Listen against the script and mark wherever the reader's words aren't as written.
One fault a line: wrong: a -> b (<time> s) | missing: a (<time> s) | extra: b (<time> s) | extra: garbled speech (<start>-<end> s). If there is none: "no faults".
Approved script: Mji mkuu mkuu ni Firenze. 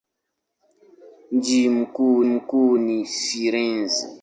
no faults